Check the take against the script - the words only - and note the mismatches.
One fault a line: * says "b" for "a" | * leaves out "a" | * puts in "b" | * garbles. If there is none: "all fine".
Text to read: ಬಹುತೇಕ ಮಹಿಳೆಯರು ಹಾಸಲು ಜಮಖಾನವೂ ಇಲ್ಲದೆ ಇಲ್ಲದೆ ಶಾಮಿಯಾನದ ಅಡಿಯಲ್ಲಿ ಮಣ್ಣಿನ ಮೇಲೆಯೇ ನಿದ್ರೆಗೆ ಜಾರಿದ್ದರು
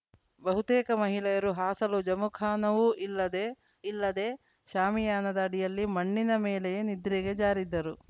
all fine